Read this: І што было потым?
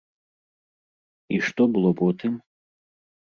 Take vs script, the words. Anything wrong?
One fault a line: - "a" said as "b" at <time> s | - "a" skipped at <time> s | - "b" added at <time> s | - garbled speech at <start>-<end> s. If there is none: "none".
none